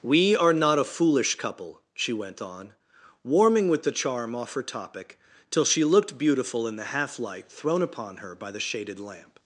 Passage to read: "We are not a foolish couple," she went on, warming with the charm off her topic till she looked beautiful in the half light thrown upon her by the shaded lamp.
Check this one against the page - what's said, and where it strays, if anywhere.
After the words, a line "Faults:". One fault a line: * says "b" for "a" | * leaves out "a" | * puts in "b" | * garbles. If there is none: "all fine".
"We are not a foolish couple," she went on, warming with the charm off her topic till she looked beautiful in the half light thrown upon her by the shaded lamp.
Faults:
all fine